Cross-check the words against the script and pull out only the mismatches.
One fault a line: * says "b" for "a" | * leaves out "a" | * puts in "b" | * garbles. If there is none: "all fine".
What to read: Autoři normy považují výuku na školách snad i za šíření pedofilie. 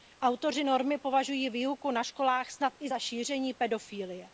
all fine